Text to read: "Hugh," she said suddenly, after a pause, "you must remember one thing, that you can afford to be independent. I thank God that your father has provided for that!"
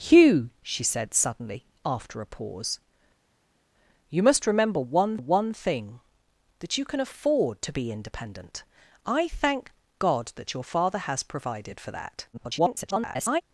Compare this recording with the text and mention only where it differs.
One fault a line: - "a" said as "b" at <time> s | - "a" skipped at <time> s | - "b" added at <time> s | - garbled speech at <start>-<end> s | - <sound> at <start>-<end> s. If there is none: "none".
- "one" added at 5.2 s
- garbled speech at 12.3-13.4 s